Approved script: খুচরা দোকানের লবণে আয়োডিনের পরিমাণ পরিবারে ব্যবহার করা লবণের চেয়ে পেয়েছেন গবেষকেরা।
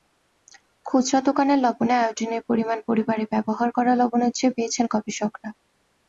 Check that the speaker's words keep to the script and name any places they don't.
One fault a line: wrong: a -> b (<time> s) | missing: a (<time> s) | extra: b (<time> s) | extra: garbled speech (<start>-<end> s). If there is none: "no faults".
no faults